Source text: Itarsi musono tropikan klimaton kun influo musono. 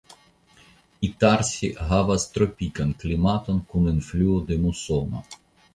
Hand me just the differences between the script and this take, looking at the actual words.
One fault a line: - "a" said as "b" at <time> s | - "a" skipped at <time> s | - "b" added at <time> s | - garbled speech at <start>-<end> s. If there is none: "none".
- "musono" said as "havas" at 1.9 s
- "de" added at 4.5 s